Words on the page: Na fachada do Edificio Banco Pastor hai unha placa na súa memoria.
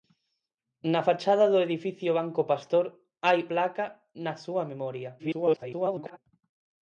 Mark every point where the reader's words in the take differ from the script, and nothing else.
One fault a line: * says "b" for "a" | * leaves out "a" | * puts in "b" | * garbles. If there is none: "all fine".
* leaves out "unha"
* garbles